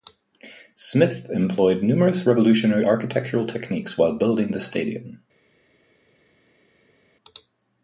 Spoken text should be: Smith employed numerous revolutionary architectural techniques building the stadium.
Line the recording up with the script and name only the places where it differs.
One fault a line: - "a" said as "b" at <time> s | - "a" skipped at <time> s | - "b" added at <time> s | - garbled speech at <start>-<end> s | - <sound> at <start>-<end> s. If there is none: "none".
- "while" added at 4.0 s